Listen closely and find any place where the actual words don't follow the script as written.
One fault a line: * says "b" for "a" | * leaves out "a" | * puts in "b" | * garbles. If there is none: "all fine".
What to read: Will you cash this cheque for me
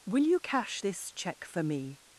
all fine